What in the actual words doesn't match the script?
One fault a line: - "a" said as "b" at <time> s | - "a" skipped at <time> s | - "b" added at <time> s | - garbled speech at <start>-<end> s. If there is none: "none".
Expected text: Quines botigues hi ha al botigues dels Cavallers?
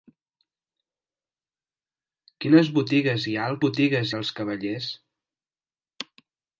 none